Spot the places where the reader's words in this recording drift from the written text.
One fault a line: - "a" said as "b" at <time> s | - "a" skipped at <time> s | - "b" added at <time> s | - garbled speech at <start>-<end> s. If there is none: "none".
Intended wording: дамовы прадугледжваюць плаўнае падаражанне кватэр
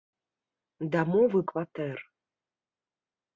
- "прадугледжваюць плаўнае падаражанне" skipped at 1.4 s